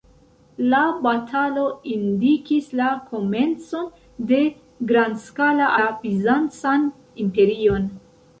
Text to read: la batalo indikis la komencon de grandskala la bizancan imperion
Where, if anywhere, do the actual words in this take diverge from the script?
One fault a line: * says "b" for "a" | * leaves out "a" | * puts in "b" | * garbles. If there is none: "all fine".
all fine